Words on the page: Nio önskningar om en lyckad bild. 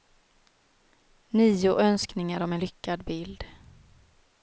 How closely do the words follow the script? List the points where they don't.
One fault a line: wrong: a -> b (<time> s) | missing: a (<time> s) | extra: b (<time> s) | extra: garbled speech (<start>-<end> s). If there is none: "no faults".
no faults